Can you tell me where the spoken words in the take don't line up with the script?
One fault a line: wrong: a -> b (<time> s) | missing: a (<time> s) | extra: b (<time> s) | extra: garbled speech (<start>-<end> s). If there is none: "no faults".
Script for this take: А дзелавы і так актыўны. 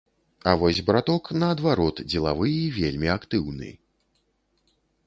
extra: вось браток наадварот (0.6 s)
wrong: так -> вельмі (2.8 s)